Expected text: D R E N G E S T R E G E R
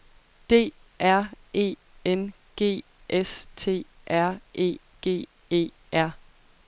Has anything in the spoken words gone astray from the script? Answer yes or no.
yes